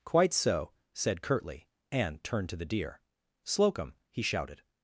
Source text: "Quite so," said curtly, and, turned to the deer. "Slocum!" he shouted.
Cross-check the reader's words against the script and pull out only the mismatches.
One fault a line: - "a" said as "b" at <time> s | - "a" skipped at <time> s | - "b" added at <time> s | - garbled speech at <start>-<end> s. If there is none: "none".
none